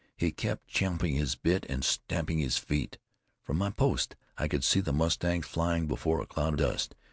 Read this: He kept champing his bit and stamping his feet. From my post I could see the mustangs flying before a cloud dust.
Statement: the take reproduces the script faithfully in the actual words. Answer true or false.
true